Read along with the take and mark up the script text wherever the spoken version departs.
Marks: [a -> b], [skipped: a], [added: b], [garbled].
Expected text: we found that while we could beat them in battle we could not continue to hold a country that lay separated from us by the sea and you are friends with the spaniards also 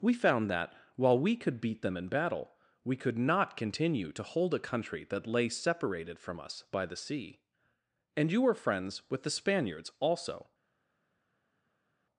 we found that while we could beat them in battle we could not continue to hold a country that lay separated from us by the sea and you [are -> were] friends with the spaniards also